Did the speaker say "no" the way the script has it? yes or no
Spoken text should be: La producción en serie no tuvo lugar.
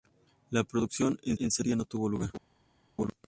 yes